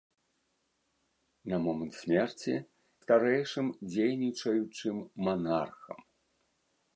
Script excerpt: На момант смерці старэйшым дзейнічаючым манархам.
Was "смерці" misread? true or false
false